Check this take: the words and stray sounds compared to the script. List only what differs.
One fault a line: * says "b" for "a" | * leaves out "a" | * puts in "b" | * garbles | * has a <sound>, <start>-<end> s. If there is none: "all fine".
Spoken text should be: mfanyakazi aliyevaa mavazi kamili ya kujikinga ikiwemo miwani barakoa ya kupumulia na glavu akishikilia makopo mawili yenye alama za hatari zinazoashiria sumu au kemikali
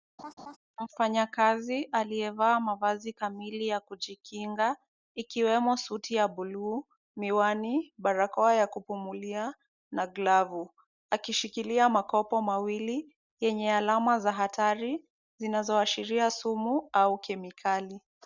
* has a laugh, 0.2-0.6 s
* puts in "suti ya buluu"